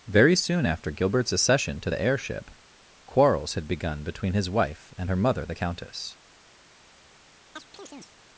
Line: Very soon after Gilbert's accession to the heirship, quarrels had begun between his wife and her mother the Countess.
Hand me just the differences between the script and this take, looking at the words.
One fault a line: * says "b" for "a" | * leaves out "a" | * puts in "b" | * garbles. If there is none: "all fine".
all fine